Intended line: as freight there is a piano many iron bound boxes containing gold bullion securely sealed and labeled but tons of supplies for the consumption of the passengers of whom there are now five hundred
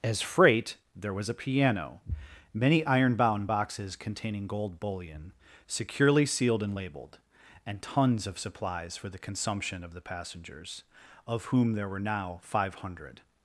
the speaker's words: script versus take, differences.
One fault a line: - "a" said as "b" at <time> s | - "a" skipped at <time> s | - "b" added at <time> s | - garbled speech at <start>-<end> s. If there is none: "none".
- "is" said as "was" at 1.1 s
- "but" said as "and" at 7.7 s
- "are" said as "were" at 11.9 s